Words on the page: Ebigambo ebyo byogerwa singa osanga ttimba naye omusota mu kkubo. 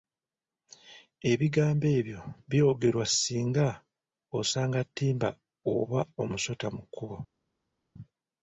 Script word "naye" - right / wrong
wrong